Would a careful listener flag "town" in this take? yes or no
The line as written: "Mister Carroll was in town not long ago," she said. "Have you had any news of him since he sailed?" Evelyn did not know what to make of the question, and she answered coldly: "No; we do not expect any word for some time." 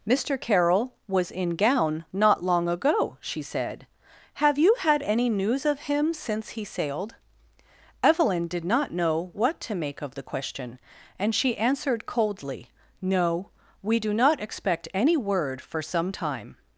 yes